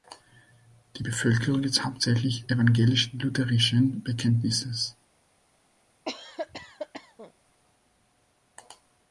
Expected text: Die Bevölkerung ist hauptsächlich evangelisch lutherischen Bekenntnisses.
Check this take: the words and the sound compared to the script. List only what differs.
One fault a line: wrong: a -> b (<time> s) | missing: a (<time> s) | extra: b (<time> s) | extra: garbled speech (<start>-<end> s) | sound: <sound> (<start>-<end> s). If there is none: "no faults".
sound: cough (6.1-7.3 s)